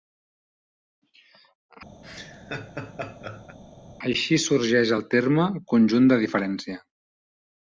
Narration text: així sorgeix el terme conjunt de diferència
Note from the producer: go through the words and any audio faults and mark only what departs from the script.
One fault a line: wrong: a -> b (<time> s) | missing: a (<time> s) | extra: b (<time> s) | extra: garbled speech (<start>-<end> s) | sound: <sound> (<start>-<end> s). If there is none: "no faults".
sound: laugh (2.0-3.6 s)